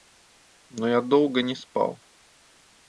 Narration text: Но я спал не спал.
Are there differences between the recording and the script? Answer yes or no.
yes